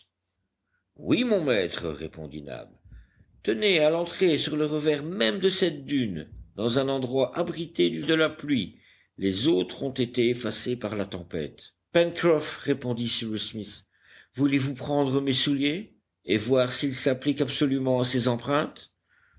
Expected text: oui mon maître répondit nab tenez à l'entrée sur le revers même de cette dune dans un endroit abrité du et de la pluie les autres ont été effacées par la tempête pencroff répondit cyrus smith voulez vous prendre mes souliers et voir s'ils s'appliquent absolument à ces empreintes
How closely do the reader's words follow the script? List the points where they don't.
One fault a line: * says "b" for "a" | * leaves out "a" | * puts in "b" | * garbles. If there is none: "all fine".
all fine